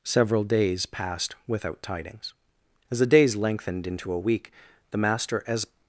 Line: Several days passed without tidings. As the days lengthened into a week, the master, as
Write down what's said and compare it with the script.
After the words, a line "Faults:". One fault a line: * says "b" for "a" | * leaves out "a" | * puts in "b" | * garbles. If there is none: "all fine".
Several days passed without tidings. As the days lengthened into a week, the master, as
Faults:
all fine